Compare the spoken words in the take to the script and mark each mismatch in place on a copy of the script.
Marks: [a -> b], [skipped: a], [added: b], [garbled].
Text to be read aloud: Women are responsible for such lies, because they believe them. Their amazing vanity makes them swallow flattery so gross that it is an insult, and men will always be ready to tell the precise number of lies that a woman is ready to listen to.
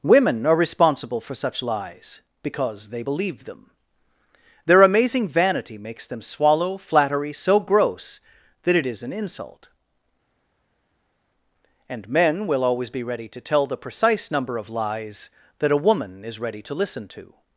Women are responsible for such lies, because they believe them. Their amazing vanity makes them swallow flattery so gross that it is an insult, and men will always be ready to tell the precise number of lies that a woman is ready to listen to.